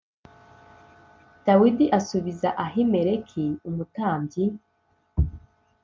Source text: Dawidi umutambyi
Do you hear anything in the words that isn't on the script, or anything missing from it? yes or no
yes